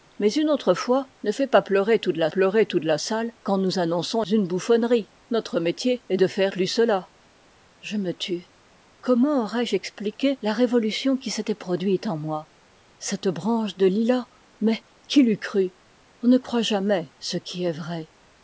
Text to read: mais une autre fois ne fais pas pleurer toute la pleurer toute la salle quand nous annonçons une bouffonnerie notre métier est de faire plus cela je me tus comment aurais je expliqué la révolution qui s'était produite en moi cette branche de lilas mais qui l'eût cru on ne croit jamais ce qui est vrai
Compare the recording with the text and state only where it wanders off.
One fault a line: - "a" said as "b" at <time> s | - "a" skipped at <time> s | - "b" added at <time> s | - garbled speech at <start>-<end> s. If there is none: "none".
none